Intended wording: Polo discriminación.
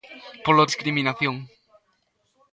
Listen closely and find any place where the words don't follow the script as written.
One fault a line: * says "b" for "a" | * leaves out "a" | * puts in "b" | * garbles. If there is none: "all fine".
all fine